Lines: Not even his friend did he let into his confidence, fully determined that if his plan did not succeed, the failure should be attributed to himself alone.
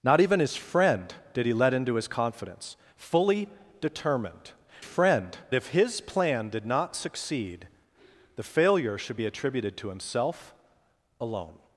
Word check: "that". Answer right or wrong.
wrong